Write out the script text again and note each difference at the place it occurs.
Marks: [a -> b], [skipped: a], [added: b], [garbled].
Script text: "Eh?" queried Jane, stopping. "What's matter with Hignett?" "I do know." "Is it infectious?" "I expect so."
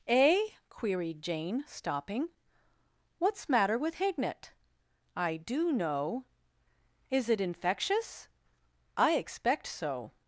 "Eh?" queried Jane, stopping. "What's matter with Hignett?" "I do know." "Is it infectious?" "I expect so."